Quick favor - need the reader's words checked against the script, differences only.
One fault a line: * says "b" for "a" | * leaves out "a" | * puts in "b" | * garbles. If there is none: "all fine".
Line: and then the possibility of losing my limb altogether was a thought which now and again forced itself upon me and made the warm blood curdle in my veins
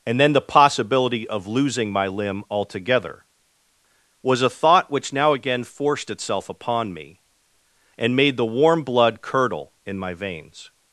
* leaves out "and"